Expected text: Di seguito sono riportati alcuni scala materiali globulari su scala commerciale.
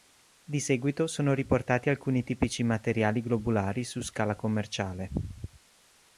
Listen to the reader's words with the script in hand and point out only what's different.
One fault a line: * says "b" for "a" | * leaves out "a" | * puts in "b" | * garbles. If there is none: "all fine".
* says "tipici" for "scala"